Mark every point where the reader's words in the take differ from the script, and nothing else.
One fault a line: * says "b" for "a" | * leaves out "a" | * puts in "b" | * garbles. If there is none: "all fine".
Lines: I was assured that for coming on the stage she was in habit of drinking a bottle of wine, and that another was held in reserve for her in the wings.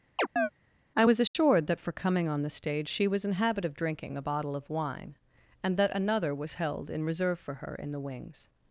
all fine